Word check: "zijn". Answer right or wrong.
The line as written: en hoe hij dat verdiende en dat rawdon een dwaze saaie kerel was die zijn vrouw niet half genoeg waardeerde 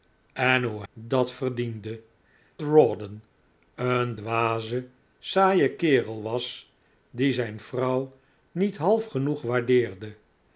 right